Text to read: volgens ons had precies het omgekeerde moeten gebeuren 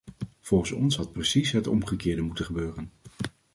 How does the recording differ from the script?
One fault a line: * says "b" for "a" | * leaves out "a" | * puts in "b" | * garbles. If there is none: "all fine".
all fine